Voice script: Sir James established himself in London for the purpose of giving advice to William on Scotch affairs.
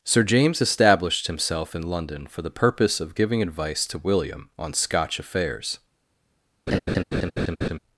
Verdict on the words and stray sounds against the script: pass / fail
fail